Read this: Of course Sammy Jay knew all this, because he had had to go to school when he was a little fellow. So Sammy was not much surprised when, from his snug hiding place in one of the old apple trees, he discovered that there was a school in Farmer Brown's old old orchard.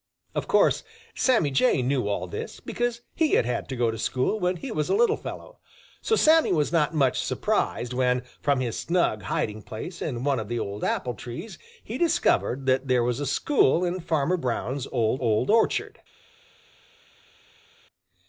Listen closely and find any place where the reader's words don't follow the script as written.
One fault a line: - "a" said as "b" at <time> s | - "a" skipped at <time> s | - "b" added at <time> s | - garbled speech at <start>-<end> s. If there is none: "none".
none